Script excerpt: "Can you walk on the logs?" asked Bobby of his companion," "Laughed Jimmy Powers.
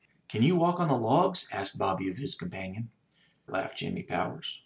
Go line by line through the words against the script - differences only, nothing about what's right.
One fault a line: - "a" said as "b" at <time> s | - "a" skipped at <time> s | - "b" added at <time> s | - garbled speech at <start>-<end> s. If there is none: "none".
none